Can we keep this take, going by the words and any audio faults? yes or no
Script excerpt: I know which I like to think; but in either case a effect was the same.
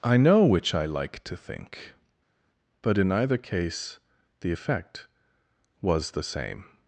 no